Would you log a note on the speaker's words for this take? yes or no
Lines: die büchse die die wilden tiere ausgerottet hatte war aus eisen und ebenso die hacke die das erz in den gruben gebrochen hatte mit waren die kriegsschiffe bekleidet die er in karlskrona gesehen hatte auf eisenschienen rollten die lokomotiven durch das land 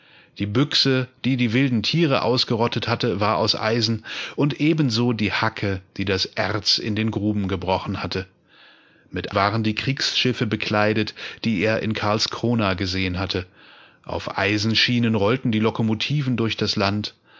no